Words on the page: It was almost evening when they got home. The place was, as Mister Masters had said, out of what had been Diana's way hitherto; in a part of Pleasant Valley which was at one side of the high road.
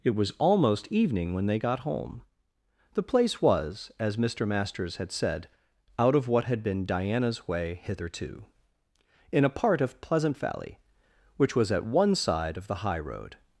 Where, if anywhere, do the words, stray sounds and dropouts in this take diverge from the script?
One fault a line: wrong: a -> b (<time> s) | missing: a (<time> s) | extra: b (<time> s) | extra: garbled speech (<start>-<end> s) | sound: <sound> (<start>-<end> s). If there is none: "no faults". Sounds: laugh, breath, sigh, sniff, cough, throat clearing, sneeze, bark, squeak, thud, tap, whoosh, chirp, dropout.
no faults